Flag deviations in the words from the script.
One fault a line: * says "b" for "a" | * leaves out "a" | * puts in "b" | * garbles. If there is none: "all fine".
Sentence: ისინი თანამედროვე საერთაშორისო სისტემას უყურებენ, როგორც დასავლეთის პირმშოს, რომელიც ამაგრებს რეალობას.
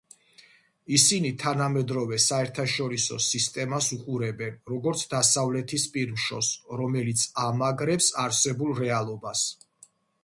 * puts in "არსებულ"